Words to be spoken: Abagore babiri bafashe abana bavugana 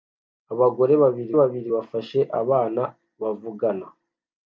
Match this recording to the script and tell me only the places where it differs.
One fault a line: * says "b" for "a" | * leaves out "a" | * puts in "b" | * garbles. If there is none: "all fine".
* puts in "babiri"